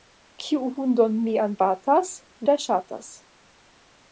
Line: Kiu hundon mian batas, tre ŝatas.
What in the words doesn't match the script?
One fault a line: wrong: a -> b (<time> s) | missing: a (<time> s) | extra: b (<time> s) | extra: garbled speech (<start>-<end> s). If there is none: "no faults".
no faults